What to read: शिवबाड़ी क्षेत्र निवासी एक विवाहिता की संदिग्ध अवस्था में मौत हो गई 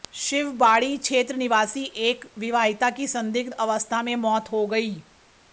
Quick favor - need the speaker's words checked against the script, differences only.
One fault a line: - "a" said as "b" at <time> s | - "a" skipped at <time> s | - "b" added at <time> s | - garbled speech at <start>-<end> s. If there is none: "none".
none